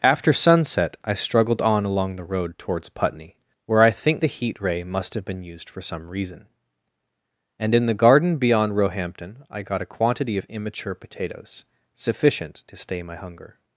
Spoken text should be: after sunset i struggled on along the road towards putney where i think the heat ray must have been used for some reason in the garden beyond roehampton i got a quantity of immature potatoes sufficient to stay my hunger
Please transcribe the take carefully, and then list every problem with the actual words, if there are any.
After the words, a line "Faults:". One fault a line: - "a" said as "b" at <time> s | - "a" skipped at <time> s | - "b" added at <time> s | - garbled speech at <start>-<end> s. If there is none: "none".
after sunset i struggled on along the road towards putney where i think the heat ray must have been used for some reason and in the garden beyond roehampton i got a quantity of immature potatoes sufficient to stay my hunger
Faults:
- "and" added at 7.6 s